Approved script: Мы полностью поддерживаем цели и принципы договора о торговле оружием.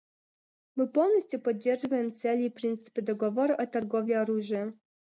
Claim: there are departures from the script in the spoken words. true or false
false